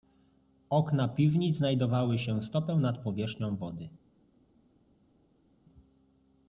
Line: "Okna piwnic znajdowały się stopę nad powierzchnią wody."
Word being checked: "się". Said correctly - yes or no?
yes